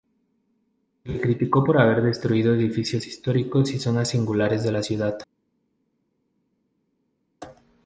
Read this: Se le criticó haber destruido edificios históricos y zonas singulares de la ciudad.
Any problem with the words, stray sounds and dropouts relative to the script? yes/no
yes